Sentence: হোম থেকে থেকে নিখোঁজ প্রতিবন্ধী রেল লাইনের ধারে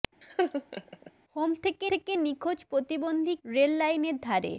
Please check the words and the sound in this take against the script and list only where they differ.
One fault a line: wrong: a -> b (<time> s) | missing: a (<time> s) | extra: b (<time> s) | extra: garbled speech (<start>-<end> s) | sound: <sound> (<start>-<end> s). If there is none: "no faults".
sound: laugh (0.2-1.1 s)